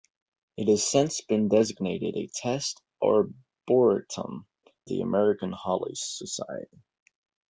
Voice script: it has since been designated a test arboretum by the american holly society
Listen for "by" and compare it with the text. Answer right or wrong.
wrong